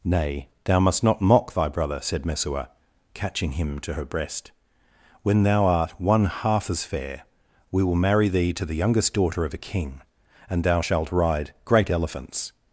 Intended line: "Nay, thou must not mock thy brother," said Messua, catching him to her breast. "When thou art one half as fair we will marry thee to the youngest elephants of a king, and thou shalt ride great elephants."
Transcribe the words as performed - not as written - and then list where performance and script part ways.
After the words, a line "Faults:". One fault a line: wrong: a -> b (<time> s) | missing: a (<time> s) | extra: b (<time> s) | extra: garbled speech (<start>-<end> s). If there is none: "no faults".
"Nay, thou must not mock thy brother," said Messua, catching him to her breast. "When thou art one half as fair we will marry thee to the youngest daughter of a king, and thou shalt ride great elephants."
Faults:
wrong: elephants -> daughter (9.1 s)